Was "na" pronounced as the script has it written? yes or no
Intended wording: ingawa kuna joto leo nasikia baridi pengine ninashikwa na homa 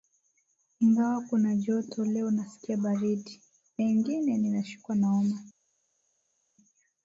yes